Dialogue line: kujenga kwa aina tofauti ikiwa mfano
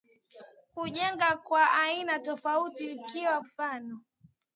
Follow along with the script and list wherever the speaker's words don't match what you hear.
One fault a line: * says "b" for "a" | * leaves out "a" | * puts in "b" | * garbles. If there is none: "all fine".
all fine